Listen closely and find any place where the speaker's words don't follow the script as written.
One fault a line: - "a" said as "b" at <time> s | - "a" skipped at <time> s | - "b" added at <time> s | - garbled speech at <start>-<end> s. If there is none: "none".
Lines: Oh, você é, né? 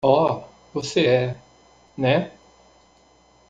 none